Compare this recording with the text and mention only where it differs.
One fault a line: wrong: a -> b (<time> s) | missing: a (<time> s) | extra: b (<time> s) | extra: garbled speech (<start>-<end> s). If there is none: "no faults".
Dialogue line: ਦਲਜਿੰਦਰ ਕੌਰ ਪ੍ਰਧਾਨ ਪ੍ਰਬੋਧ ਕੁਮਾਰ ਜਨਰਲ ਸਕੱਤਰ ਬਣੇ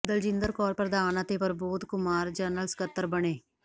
extra: ਅਤੇ (1.2 s)